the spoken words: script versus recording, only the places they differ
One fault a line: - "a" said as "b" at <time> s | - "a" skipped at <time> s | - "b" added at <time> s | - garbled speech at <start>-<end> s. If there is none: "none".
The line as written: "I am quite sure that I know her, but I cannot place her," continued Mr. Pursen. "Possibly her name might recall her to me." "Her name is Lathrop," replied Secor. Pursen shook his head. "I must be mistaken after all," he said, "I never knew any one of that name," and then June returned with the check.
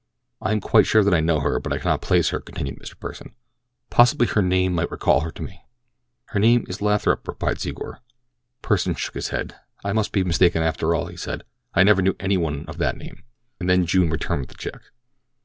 none